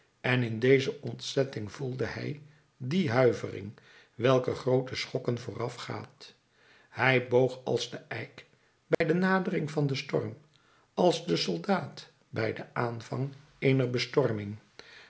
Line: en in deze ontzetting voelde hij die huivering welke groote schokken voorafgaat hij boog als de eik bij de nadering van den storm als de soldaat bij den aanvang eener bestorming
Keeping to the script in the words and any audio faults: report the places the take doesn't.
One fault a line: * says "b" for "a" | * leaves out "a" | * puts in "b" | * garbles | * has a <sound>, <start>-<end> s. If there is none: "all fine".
* has a dropout, 8.9-9.0 s